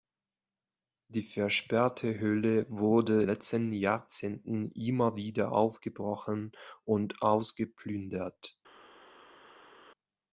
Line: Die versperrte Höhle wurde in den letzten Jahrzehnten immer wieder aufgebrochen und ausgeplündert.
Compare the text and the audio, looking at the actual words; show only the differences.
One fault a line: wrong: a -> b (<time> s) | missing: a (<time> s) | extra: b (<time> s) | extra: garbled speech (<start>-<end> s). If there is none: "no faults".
missing: in den (3.2 s)